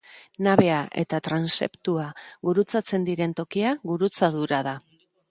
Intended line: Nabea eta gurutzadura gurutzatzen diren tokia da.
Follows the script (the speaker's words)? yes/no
no